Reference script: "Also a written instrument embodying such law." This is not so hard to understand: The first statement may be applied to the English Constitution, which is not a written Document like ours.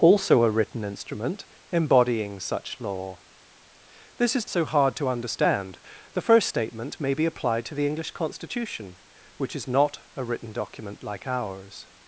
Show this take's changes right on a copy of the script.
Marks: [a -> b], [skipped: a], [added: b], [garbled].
"Also a written instrument embodying such law." This is [skipped: not] so hard to understand: The first statement may be applied to the English Constitution, which is not a written Document like ours.